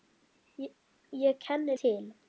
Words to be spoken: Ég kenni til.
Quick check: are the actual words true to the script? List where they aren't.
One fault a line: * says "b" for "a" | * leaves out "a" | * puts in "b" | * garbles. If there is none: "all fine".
all fine